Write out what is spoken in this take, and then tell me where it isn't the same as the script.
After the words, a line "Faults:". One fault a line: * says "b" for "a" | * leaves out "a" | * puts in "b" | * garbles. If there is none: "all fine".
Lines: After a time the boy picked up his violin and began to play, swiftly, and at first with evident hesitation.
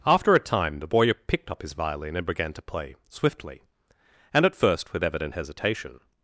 After a time the boy picked up his violin and began to play, swiftly, and at first with evident hesitation.
Faults:
all fine